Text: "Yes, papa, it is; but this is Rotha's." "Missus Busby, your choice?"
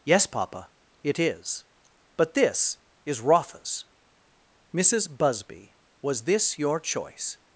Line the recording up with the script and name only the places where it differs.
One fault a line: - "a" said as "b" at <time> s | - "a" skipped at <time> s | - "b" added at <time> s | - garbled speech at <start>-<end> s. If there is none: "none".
- "was this" added at 6.0 s